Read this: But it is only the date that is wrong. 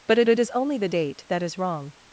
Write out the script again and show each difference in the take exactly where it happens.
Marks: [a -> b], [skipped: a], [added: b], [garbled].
But it [added: it] is only the date that is wrong.